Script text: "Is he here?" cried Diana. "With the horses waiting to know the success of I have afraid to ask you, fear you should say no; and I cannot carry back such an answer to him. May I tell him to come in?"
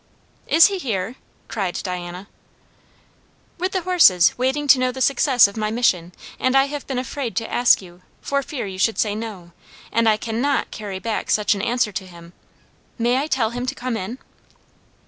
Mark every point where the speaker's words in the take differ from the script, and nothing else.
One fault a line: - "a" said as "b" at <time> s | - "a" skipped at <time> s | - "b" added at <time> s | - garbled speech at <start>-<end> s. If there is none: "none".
- "my mission and" added at 5.6 s
- "been" added at 6.9 s
- "for" added at 8.2 s